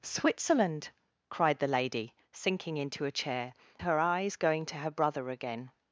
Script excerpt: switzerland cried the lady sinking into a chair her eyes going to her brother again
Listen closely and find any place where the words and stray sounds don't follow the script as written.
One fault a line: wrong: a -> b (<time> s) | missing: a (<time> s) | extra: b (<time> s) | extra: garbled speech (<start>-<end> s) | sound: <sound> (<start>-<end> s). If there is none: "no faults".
no faults